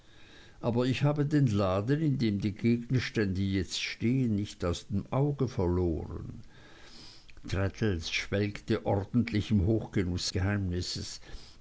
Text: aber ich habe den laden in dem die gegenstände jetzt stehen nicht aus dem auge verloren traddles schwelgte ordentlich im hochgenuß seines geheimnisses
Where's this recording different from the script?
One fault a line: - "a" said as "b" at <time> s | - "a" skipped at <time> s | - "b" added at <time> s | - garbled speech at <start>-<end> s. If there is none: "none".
- "seines" skipped at 10.3 s